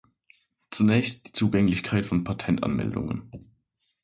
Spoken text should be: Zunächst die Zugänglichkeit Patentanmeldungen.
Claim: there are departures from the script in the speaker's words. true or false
true